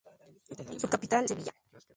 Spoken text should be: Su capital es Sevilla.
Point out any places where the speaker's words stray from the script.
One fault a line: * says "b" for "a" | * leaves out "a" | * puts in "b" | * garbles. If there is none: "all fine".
* leaves out "es"